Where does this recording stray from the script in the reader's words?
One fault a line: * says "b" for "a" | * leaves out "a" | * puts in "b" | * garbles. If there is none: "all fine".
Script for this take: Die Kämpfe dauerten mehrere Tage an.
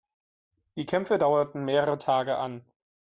all fine